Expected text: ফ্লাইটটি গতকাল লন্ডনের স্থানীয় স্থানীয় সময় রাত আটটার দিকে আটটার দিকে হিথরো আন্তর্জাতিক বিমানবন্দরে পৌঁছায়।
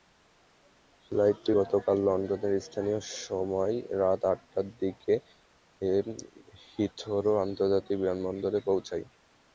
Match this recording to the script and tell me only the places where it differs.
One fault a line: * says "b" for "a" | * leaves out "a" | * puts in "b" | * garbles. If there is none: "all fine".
* leaves out "স্থানীয়"
* leaves out "আটটার দিকে"